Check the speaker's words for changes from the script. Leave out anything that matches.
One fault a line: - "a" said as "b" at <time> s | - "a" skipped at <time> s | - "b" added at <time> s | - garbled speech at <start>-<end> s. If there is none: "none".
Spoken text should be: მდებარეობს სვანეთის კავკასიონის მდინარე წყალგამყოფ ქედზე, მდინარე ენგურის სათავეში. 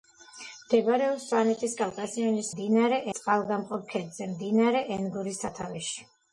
none